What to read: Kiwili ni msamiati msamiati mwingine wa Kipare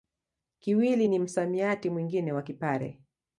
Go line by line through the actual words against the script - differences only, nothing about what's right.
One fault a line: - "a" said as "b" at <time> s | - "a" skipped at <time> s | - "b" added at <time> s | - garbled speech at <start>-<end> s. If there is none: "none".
- "msamiati" skipped at 1.9 s